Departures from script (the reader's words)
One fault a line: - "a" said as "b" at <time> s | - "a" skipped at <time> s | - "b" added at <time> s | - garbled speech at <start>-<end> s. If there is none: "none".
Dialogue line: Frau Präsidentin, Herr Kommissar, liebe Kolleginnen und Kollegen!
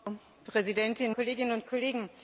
- "Herr Kommissar liebe" skipped at 1.1 s